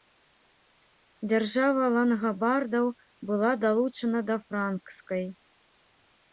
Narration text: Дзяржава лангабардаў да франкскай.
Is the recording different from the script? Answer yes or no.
yes